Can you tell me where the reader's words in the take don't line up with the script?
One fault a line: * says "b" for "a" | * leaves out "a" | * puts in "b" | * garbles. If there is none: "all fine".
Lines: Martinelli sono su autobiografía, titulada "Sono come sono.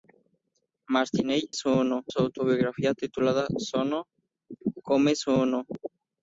all fine